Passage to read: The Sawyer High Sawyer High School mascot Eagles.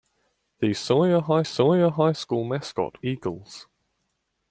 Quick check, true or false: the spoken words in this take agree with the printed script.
true